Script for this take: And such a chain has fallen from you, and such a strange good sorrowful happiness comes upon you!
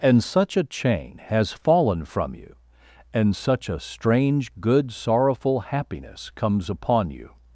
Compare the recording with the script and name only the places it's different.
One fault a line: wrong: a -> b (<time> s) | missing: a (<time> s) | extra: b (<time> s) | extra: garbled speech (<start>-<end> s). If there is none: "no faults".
no faults